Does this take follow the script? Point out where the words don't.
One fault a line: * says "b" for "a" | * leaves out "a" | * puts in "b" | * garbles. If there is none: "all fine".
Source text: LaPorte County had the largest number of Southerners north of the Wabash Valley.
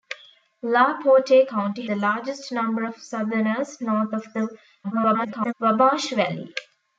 * leaves out "had"
* garbles